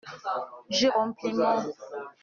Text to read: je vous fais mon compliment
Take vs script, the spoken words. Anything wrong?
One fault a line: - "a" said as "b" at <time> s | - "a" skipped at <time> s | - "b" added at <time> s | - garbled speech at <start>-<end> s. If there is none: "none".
- "vous fais mon" skipped at 0.9 s